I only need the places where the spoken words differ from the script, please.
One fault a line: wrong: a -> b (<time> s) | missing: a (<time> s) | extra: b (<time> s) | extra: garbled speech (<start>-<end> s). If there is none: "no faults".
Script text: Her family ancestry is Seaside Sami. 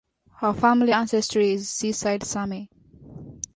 no faults